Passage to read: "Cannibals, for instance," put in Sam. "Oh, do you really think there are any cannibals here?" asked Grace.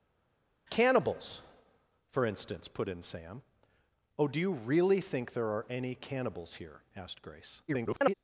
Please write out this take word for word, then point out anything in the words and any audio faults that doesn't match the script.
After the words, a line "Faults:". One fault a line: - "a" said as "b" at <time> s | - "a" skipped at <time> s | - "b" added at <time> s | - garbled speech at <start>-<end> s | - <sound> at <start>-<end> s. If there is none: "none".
"Cannibals, for instance," put in Sam. "Oh, do you really think there are any cannibals here?" asked Grace. [garbled]
Faults:
- garbled speech at 7.7-8.1 s